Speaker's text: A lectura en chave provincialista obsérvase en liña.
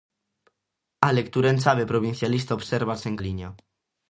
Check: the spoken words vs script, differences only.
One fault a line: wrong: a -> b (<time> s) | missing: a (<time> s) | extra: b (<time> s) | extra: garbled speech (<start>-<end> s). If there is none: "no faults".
no faults